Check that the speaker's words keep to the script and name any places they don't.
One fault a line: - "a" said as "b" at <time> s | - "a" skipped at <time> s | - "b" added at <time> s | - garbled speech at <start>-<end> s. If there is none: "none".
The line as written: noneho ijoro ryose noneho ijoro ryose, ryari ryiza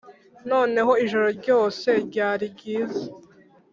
- "noneho ijoro ryose" skipped at 1.9 s